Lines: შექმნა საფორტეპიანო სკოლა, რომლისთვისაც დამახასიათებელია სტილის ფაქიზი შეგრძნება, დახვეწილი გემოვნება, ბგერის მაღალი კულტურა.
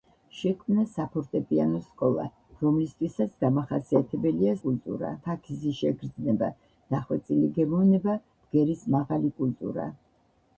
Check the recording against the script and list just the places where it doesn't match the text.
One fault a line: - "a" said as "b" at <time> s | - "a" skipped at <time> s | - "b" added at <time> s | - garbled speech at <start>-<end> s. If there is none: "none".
- "სტილის" said as "კულტურა" at 4.7 s